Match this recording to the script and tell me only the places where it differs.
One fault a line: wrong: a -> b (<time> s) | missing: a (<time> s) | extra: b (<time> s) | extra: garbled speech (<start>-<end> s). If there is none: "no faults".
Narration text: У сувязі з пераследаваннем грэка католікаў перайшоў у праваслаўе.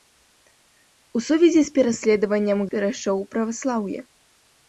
missing: грэка католікаў (2.6 s)